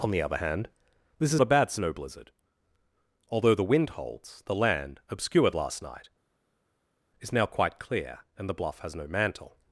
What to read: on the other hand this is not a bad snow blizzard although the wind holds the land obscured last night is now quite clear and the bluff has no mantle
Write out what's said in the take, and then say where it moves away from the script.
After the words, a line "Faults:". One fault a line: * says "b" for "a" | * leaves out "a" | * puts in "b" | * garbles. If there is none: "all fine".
on the other hand this is a bad snow blizzard although the wind holds the land obscured last night is now quite clear and the bluff has no mantle
Faults:
* leaves out "not"